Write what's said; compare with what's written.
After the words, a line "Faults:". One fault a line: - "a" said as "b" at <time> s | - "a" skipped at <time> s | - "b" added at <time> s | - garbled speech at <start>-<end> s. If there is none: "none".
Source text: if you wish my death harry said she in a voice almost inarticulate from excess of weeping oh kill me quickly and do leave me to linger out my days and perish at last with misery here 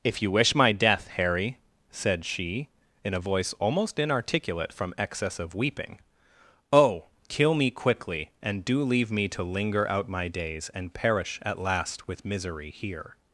if you wish my death harry said she in a voice almost inarticulate from excess of weeping oh kill me quickly and do leave me to linger out my days and perish at last with misery here
Faults:
none